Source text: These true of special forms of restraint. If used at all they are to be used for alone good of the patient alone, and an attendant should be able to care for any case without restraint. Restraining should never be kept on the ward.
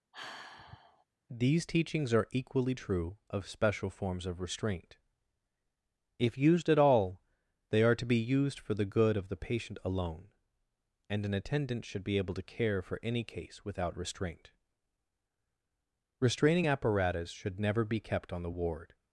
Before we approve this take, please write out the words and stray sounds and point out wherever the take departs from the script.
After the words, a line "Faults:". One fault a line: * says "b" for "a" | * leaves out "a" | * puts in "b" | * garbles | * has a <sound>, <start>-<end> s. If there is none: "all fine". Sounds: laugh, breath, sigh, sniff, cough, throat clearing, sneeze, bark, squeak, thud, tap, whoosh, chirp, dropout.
These teachings are equally true of special forms of restraint. If used at all they are to be used for the good of the patient alone, and an attendant should be able to care for any case without restraint. Restraining apparatus should never be kept on the ward.
Faults:
* has a sigh, 0.1-1.0 s
* puts in "teachings are equally"
* says "the" for "alone"
* puts in "apparatus"